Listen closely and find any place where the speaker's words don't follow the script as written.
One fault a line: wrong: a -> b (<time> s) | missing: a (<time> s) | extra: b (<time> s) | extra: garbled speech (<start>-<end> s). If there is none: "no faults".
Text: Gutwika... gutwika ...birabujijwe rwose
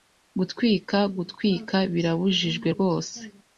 no faults